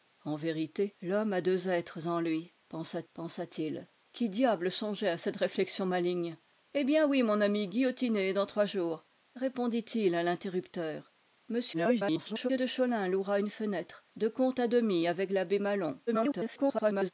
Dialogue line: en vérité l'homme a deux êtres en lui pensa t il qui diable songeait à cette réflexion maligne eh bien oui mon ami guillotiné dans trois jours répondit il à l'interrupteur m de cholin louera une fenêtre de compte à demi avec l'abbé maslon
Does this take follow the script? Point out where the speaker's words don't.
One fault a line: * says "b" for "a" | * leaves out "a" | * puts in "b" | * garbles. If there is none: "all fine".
* puts in "pensa"
* garbles
* garbles